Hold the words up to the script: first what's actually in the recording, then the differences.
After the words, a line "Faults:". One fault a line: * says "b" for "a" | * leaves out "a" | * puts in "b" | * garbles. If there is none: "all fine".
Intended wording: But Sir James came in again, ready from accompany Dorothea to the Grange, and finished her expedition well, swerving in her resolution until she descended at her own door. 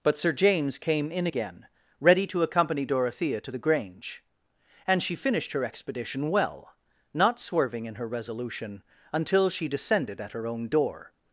But Sir James came in again, ready to accompany Dorothea to the Grange, and she finished her expedition well, not swerving in her resolution until she descended at her own door.
Faults:
* says "to" for "from"
* puts in "she"
* puts in "not"